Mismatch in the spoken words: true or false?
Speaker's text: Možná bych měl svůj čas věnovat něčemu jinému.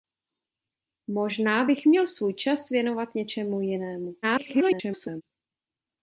true